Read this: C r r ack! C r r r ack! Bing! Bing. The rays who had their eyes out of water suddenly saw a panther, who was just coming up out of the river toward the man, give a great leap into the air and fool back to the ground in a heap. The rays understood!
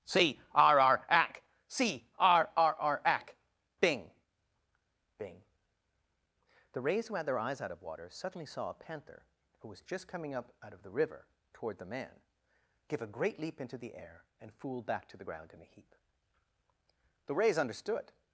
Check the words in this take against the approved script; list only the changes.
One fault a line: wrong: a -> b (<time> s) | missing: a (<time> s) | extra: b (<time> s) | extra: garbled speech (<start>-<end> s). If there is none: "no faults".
no faults